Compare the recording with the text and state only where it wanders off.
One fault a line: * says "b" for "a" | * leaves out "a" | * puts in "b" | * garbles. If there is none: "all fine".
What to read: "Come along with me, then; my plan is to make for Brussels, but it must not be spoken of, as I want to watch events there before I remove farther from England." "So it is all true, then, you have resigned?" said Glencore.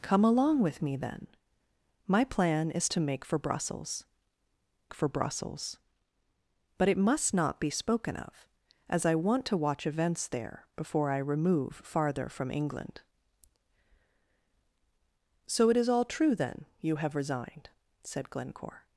* puts in "for Brussels"